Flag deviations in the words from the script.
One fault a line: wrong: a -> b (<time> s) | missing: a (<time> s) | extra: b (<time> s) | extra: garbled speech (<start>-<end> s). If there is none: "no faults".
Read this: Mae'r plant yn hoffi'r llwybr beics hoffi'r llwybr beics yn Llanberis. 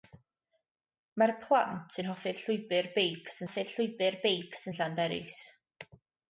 no faults